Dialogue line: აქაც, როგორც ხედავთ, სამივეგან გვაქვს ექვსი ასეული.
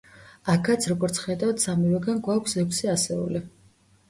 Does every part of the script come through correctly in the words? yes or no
yes